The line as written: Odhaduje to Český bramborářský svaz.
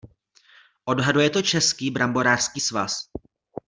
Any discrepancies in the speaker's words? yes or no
no